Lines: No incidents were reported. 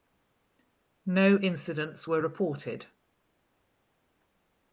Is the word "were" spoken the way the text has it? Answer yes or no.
yes